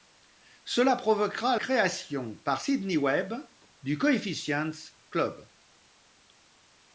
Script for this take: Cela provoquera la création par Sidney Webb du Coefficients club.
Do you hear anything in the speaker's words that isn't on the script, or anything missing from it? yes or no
yes